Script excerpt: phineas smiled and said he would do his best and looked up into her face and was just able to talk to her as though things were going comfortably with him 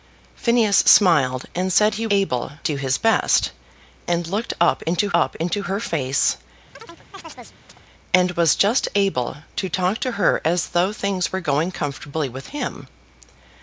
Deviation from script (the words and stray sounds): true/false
true